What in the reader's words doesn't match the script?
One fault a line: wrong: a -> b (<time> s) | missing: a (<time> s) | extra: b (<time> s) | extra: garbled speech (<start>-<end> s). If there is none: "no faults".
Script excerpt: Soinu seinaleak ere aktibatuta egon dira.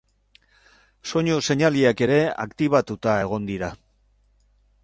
no faults